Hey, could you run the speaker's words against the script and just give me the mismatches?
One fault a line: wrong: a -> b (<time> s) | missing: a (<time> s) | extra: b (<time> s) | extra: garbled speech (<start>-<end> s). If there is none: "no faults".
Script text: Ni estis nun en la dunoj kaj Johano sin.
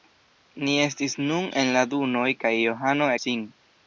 no faults